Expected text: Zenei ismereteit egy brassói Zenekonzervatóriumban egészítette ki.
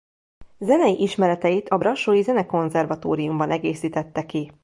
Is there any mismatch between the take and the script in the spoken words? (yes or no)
yes